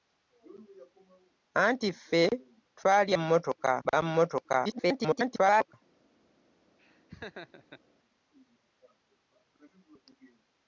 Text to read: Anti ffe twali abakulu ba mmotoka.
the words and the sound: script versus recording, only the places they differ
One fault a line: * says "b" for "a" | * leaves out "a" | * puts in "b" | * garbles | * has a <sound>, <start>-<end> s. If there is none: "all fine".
* says "mmotoka" for "abakulu"
* garbles
* has a laugh, 6.8-7.8 s